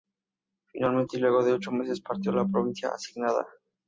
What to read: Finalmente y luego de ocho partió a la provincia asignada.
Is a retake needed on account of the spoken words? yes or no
yes